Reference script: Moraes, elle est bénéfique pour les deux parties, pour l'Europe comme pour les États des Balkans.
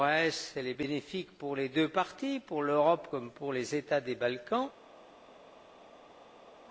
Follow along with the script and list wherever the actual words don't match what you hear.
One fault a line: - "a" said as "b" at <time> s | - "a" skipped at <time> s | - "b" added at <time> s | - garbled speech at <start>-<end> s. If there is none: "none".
none